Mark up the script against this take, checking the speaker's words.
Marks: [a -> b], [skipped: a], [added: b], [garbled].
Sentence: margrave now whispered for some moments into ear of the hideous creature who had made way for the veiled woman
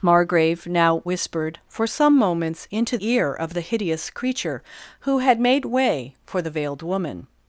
margrave now whispered for some moments into ear of the hideous creature who had made way for the veiled woman